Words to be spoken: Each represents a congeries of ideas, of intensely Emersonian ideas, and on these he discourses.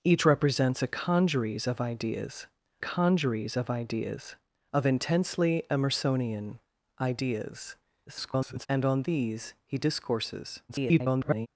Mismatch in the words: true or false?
true